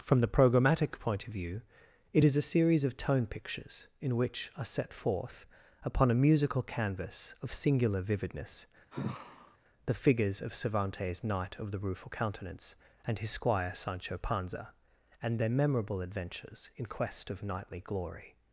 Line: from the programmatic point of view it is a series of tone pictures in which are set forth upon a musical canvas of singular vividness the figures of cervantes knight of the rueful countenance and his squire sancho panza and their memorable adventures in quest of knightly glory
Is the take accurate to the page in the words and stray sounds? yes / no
no